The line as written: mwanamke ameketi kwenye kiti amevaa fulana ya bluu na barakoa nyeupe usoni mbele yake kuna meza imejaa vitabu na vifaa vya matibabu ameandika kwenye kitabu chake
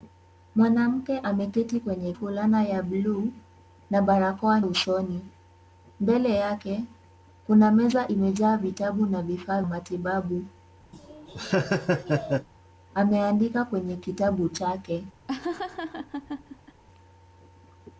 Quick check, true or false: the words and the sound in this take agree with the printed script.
false